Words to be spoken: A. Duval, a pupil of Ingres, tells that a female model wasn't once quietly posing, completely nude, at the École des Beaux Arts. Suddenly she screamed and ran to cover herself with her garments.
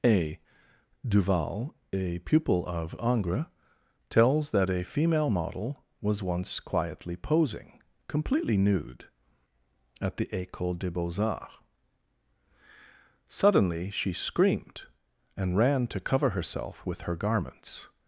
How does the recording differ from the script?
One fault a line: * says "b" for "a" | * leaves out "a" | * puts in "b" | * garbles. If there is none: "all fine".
* says "was" for "wasn't"